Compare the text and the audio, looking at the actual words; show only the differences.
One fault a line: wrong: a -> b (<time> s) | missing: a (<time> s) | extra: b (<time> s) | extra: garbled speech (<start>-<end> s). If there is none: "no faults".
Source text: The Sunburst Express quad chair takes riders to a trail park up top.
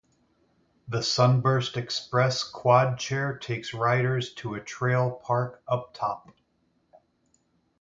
no faults